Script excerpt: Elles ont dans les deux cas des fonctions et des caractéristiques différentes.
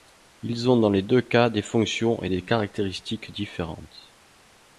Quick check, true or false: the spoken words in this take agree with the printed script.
false